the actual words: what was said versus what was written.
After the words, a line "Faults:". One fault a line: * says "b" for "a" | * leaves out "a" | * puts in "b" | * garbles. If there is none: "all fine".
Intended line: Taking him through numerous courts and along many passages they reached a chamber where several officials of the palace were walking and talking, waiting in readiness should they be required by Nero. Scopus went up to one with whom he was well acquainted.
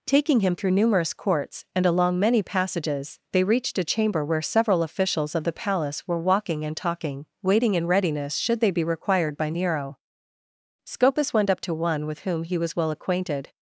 Taking him through numerous courts and along many passages they reached a chamber where several officials of the palace were walking and talking, waiting in readiness should they be required by Nero. Scopus went up to one with whom he was well acquainted.
Faults:
all fine